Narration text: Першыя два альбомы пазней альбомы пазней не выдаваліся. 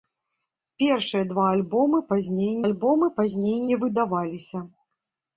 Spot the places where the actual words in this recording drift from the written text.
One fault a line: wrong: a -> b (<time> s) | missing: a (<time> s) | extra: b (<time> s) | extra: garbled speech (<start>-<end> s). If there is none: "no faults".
no faults